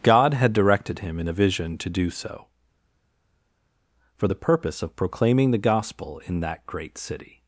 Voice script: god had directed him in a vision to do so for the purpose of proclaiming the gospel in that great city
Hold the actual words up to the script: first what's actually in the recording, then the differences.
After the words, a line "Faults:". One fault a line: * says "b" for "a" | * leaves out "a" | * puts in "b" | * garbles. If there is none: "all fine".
god had directed him in a vision to do so for the purpose of proclaiming the gospel in that great city
Faults:
all fine